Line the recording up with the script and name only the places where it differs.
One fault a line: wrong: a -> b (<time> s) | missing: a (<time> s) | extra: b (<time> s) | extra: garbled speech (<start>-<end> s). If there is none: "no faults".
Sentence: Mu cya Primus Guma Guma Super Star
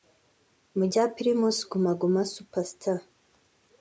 no faults